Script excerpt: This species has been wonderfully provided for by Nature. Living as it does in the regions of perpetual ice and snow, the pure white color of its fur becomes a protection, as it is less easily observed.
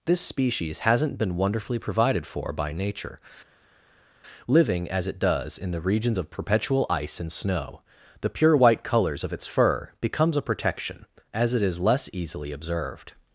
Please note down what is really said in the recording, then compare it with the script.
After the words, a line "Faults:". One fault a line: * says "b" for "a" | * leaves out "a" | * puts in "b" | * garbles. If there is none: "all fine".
This species hasn't been wonderfully provided for by Nature. Living as it does in the regions of perpetual ice and snow, the pure white colors of its fur becomes a protection, as it is less easily observed.
Faults:
* says "hasn't" for "has"
* says "colors" for "color"